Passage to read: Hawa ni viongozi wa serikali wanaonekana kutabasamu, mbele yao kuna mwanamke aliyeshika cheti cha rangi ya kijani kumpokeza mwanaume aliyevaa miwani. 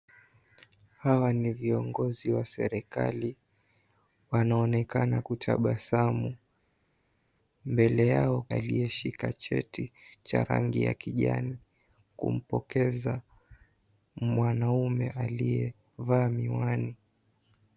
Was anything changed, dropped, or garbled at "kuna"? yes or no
yes